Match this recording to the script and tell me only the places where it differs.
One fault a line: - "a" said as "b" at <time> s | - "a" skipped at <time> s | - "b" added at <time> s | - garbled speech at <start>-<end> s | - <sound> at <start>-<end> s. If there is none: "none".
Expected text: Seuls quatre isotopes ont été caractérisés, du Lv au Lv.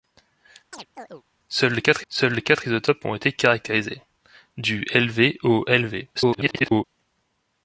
- chirp at 0.7-1.2 s
- "seuls quatre" added at 2.1 s
- garbled speech at 6.1-6.8 s